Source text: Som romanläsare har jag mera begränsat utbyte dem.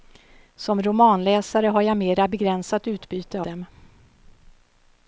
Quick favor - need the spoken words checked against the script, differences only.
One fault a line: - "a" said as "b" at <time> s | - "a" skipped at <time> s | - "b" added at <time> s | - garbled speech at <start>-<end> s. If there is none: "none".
none